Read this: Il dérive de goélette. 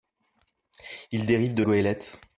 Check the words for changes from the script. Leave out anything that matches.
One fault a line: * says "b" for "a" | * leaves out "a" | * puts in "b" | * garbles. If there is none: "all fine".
all fine